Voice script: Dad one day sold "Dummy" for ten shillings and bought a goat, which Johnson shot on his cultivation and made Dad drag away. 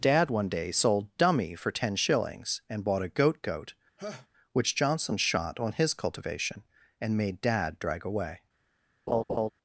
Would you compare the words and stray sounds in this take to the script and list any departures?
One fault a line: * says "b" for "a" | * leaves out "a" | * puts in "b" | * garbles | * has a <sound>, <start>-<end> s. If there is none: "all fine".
* puts in "goat"
* has a laugh, 4.0-4.3 s
* has a laugh, 9.1-9.5 s